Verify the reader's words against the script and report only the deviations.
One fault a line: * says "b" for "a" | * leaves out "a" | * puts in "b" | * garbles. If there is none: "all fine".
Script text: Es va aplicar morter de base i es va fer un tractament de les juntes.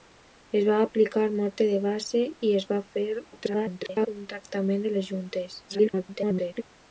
* garbles
* garbles